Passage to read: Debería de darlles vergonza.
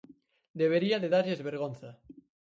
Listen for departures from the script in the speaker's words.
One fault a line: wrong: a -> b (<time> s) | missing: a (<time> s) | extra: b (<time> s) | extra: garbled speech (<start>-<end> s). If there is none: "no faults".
no faults